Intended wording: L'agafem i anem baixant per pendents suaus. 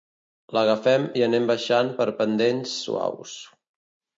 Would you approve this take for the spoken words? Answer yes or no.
yes